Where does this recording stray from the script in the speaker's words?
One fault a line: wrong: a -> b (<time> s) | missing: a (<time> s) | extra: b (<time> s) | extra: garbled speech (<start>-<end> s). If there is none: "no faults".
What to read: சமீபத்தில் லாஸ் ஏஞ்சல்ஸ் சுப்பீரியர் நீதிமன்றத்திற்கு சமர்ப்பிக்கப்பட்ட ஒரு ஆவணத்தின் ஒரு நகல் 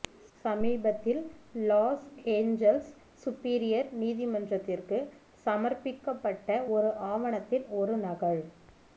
no faults